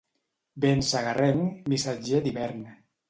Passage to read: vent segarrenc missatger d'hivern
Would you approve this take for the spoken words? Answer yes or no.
yes